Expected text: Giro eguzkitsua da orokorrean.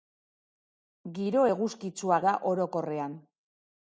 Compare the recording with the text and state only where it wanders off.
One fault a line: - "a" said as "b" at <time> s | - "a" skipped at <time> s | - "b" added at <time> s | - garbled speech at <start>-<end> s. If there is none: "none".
none